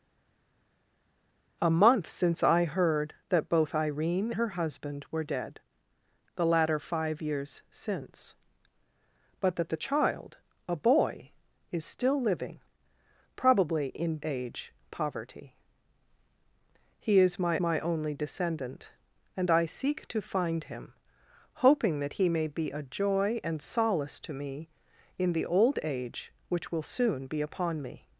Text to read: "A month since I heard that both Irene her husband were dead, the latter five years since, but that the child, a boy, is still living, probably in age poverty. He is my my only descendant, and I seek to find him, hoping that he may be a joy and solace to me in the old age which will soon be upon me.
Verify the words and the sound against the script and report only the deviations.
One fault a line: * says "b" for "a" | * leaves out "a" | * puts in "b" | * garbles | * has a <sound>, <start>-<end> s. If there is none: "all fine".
all fine